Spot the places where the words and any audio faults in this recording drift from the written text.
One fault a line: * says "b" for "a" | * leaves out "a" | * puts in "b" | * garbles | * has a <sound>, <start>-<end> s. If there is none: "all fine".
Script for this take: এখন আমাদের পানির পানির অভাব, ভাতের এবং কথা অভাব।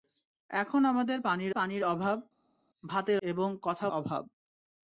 all fine